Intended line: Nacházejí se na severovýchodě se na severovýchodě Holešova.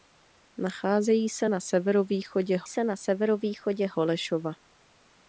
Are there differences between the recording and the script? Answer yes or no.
no